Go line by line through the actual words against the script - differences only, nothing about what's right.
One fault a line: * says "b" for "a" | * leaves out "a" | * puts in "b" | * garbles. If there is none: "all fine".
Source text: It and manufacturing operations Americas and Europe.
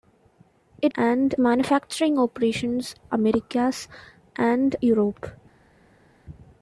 all fine